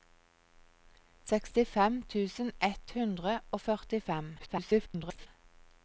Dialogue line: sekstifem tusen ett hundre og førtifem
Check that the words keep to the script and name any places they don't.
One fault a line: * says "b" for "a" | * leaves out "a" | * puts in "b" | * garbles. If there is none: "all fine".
* garbles